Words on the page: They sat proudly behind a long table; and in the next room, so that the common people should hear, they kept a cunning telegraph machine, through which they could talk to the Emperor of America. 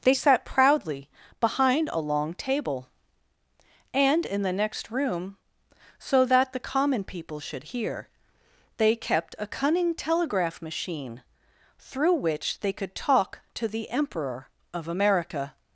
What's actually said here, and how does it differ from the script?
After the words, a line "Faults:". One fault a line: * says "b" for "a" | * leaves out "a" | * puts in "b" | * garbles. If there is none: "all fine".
They sat proudly behind a long table; and in the next room, so that the common people should hear, they kept a cunning telegraph machine, through which they could talk to the Emperor of America.
Faults:
all fine